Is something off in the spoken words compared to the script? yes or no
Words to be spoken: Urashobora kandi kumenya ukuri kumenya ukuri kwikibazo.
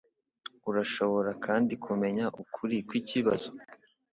yes